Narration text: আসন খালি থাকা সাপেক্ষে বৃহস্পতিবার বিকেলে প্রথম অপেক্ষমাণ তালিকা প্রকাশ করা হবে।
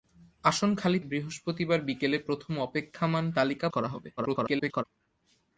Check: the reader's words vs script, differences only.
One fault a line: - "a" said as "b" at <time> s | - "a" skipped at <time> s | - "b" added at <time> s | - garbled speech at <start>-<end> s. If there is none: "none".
- "থাকা সাপেক্ষে" skipped at 1.0 s
- "প্রকাশ" skipped at 3.7 s
- garbled speech at 4.2-4.8 s